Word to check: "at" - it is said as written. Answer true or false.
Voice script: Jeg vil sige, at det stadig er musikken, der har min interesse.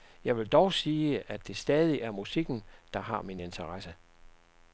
true